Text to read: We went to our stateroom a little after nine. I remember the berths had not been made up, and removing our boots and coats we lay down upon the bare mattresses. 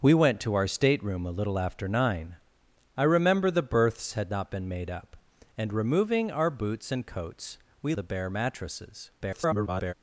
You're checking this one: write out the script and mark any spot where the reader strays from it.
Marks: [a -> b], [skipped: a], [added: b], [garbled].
We went to our stateroom a little after nine. I remember the berths had not been made up, and removing our boots and coats we [skipped: lay down upon] the bare mattresses. [garbled]